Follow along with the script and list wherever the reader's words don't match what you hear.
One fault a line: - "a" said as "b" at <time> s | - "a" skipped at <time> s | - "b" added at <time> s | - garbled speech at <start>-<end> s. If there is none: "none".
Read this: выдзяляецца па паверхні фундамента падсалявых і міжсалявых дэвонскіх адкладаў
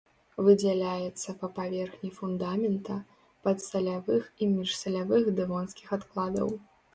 none